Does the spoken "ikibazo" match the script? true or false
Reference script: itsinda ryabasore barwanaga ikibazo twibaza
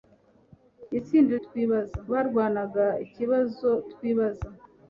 true